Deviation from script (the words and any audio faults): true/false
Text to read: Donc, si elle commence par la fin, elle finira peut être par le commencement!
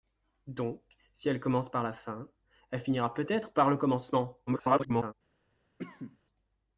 true